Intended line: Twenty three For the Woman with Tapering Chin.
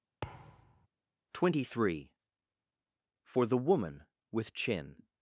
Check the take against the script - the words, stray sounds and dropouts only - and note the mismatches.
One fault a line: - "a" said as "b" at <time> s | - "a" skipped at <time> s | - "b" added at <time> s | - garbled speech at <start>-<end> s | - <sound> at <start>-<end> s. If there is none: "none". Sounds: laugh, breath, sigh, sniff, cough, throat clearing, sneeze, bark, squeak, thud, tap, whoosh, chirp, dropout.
- thud at 0.2-0.9 s
- "Tapering" skipped at 4.5 s